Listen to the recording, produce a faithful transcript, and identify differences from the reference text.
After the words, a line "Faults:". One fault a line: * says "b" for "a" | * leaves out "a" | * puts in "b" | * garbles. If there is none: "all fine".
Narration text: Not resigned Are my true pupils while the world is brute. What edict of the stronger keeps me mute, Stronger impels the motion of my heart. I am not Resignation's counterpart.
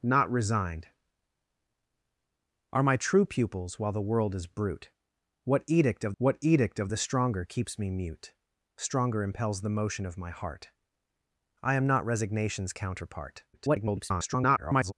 Not resigned Are my true pupils while the world is brute. What edict of what edict of the stronger keeps me mute, Stronger impels the motion of my heart. I am not Resignation's counterpart. [garbled]
Faults:
* puts in "what edict of"
* garbles